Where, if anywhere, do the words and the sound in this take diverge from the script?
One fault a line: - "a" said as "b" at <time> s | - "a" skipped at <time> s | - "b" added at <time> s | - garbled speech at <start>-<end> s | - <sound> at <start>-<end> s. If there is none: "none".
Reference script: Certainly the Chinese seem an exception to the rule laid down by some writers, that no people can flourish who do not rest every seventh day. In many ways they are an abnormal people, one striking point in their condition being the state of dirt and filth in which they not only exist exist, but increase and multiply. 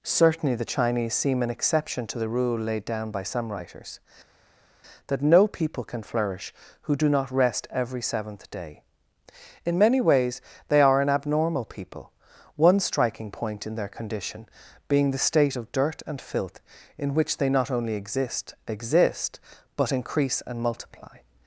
none